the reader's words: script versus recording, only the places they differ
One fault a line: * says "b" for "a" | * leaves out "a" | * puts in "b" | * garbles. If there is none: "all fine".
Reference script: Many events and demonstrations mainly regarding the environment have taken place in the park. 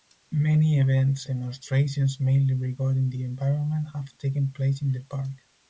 * leaves out "and"